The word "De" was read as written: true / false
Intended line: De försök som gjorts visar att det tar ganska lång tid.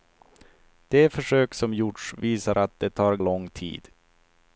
true